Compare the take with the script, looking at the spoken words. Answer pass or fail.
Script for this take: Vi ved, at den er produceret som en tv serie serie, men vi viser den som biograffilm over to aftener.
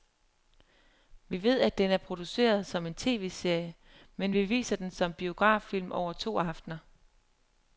fail